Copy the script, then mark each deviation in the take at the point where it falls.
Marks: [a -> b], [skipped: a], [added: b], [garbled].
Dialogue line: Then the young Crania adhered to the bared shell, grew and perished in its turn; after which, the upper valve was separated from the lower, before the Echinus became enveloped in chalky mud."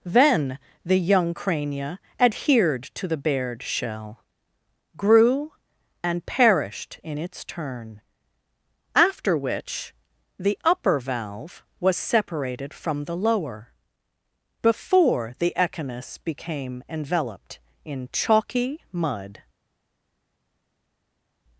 Then the young Crania adhered to the bared shell, grew and perished in its turn; after which, the upper valve was separated from the lower, before the Echinus became enveloped in chalky mud."